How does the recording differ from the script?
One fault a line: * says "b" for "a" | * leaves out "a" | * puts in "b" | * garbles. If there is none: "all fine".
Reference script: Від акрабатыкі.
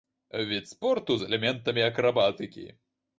* puts in "спорту з элементамі"